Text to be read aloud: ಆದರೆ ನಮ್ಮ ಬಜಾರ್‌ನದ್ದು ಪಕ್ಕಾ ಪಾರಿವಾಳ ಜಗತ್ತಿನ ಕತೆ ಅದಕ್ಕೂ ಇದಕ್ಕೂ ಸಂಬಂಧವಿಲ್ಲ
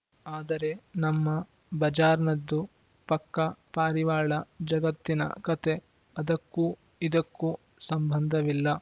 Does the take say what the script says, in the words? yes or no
yes